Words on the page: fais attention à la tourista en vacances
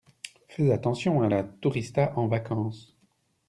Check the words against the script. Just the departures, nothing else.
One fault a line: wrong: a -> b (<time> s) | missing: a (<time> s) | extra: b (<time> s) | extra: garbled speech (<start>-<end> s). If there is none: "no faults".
no faults